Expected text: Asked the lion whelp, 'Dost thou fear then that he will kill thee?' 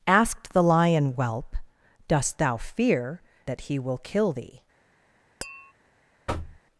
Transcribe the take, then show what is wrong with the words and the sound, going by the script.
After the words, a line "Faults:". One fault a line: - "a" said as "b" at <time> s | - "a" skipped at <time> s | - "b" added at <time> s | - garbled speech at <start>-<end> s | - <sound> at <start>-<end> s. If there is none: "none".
Asked the lion whelp, 'Dost thou fear that he will kill thee?'
Faults:
- "then" skipped at 3.2 s
- tap at 5.4-5.7 s
- thud at 6.3-6.6 s